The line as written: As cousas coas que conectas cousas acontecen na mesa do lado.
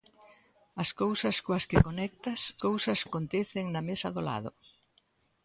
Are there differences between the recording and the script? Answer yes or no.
no